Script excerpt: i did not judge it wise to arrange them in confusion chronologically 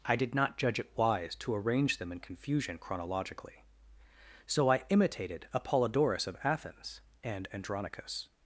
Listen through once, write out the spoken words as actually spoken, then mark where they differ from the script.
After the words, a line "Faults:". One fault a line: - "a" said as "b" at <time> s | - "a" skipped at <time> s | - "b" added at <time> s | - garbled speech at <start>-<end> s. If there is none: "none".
i did not judge it wise to arrange them in confusion chronologically so i imitated apollodorus of athens and andronicus
Faults:
- "so i imitated apollodorus of athens and andronicus" added at 4.5 s